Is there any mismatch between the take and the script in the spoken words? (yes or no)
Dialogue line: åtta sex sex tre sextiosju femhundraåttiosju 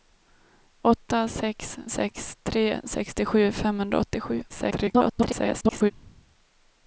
yes